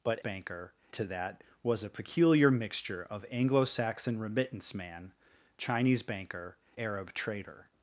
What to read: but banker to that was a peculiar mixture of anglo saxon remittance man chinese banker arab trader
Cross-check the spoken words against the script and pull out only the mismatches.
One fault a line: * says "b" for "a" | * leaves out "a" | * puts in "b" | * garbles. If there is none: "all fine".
all fine